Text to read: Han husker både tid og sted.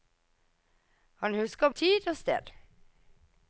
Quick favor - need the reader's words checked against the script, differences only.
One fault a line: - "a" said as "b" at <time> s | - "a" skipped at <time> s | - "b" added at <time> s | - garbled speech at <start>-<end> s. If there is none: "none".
- "både" skipped at 1.7 s